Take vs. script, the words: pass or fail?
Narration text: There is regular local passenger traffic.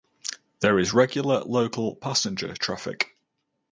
pass